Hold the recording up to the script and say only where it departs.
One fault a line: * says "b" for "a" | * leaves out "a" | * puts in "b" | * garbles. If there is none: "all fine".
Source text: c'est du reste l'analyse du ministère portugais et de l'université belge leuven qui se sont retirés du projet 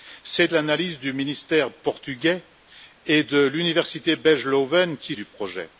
* leaves out "du reste"
* leaves out "se sont retirés"